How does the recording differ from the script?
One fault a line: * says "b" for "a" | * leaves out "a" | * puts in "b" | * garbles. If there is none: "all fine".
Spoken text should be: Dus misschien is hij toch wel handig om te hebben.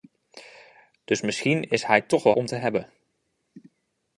* leaves out "handig"